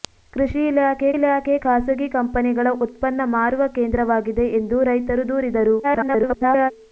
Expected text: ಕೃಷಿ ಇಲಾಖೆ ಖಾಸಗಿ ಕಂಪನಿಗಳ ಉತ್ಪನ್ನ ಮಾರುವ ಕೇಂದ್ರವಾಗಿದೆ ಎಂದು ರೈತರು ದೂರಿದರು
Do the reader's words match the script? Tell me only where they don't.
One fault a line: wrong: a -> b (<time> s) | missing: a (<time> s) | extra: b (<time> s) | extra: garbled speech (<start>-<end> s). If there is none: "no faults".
extra: ಇಲಾಖೆ (1.1 s)
extra: garbled speech (5.8-6.7 s)